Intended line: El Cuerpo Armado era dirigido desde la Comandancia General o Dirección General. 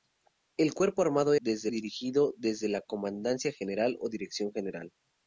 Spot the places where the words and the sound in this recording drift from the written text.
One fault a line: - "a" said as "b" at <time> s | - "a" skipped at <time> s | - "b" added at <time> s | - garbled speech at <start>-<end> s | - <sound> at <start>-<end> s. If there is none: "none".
- "era" said as "desde" at 1.4 s